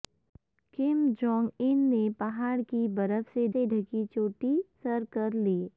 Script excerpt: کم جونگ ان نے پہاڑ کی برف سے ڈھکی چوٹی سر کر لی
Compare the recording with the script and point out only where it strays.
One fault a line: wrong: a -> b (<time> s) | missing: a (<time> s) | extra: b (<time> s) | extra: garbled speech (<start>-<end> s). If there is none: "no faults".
extra: سے (3.5 s)